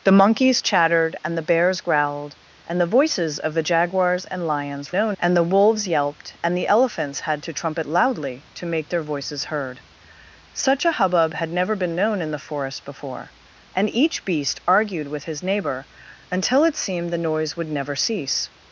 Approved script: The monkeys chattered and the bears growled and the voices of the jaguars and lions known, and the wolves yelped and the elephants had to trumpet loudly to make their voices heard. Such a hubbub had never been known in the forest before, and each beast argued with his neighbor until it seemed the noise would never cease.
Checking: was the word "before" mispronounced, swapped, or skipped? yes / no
no